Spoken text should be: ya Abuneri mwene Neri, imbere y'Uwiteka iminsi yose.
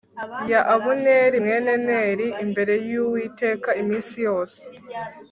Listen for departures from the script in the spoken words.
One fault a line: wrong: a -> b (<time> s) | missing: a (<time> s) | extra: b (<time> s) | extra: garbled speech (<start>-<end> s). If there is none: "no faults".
no faults